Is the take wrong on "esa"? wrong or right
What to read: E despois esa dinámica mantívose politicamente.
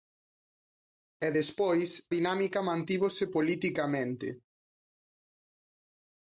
wrong